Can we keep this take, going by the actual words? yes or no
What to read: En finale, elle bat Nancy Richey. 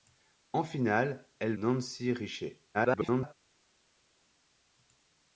no